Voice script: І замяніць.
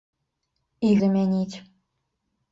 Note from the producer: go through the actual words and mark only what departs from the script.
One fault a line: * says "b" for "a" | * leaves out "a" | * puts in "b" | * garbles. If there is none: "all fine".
all fine